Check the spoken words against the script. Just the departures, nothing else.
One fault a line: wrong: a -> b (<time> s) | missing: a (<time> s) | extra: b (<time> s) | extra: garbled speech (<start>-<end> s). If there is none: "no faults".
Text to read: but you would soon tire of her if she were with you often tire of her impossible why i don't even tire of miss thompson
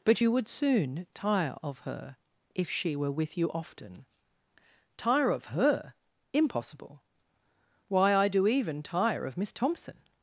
wrong: don't -> do (8.3 s)